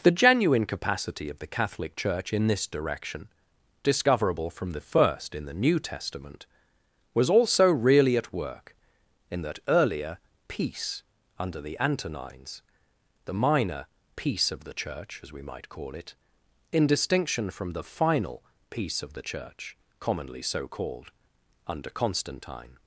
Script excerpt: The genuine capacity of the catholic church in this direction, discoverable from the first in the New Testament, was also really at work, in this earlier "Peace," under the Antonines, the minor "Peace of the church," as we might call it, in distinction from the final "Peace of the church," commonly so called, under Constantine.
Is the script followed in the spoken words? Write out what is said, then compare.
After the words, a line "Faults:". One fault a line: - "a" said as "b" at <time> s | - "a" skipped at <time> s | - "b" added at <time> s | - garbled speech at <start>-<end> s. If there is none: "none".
The genuine capacity of the catholic church in this direction, discoverable from the first in the New Testament, was also really at work, in that earlier "Peace," under the Antonines, the minor "Peace of the church," as we might call it, in distinction from the final "Peace of the church," commonly so called, under Constantine.
Faults:
- "this" said as "that" at 9.4 s